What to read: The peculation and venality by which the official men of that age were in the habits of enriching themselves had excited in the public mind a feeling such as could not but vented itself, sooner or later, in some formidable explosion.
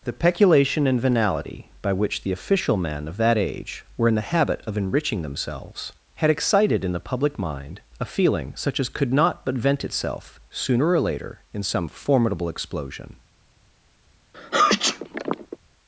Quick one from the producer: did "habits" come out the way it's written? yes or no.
no